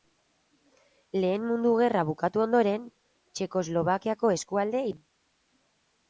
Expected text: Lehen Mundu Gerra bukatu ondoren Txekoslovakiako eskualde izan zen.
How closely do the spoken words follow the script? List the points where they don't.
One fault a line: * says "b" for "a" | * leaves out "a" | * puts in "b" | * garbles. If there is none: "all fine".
* leaves out "izan"